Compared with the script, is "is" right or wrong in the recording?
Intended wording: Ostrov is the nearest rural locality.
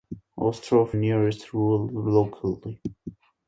wrong